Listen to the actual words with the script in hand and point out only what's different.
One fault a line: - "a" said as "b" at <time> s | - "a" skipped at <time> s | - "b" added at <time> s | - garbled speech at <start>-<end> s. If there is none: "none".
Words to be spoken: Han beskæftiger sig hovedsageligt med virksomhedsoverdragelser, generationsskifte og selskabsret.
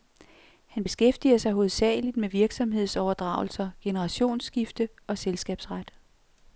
none